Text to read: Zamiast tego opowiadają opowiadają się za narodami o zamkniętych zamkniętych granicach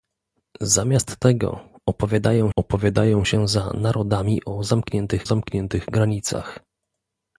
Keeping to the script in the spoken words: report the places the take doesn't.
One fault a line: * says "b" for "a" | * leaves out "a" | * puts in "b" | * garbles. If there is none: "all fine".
all fine